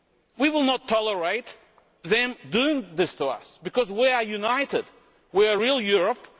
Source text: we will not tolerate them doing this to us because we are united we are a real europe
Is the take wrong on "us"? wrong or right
right